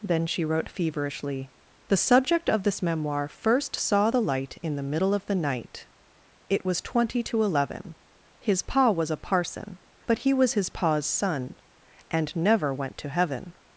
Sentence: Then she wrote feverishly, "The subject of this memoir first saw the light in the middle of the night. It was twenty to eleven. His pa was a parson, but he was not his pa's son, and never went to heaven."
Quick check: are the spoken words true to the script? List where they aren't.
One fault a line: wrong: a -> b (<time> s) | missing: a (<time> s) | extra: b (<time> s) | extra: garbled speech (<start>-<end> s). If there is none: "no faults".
missing: not (10.5 s)